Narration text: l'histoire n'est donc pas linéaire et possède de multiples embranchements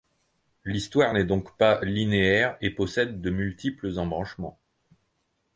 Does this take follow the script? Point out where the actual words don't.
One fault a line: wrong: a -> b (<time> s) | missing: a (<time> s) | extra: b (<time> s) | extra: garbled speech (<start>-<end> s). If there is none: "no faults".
no faults